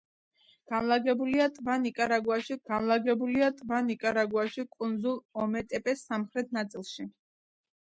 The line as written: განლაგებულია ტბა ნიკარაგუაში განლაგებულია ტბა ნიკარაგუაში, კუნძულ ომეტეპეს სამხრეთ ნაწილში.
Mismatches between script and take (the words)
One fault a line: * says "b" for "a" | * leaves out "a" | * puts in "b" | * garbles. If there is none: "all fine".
all fine